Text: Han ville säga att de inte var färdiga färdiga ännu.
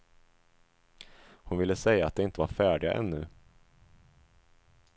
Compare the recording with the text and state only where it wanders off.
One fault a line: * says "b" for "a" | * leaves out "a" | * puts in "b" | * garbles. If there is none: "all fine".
* says "Hon" for "Han"
* leaves out "färdiga"